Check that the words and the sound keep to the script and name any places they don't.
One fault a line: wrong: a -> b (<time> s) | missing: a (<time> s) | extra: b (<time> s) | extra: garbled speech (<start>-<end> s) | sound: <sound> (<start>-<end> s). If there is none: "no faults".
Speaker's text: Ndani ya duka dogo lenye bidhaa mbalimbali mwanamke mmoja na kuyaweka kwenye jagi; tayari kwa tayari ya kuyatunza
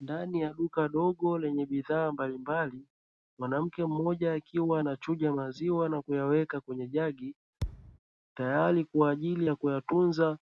extra: akiwa anachuja maziwa (4.3 s)
sound: thud (7.6-8.0 s)
wrong: tayari -> ajili (9.1 s)